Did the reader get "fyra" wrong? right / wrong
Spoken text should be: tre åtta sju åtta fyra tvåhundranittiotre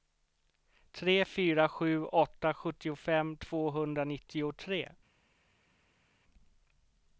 wrong